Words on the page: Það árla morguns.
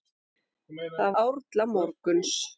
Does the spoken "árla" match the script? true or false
true